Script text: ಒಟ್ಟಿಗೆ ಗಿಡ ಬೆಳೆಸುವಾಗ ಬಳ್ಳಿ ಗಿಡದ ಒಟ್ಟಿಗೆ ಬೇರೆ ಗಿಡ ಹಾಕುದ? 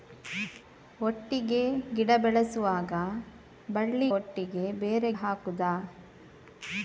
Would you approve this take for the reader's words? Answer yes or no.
no